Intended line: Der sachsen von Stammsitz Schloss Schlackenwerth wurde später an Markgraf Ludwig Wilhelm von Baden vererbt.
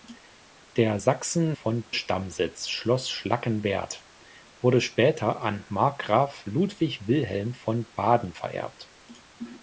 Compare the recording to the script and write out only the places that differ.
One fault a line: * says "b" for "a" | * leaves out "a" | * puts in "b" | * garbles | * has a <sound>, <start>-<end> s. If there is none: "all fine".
all fine